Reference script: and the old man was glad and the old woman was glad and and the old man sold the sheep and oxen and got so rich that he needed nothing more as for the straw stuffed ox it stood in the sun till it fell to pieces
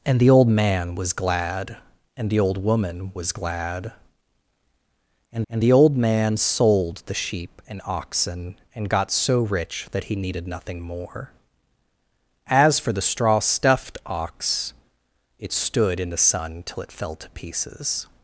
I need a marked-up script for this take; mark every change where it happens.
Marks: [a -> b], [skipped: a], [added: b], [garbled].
and the old man was glad and the old woman was glad and and the old man sold the sheep and oxen and got so rich that he needed nothing more as for the straw stuffed ox it stood in the sun till it fell to pieces